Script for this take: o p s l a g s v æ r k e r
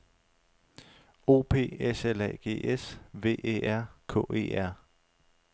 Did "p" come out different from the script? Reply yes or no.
no